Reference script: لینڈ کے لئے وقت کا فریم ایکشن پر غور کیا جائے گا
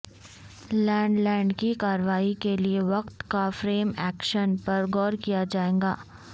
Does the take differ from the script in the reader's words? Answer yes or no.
yes